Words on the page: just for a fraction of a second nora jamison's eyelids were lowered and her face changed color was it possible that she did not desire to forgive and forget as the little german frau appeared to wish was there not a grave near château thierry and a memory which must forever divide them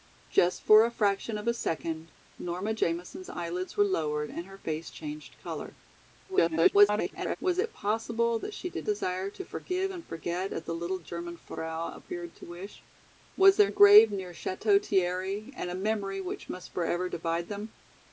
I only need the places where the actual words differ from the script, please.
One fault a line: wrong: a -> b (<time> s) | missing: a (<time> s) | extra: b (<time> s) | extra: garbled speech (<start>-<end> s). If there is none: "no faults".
extra: garbled speech (6.3-7.4 s)
missing: not (8.9 s)
missing: not (13.7 s)